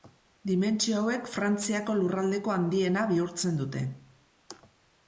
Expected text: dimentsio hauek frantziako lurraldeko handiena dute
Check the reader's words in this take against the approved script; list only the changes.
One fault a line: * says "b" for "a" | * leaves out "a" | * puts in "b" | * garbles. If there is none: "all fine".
* puts in "bihurtzen"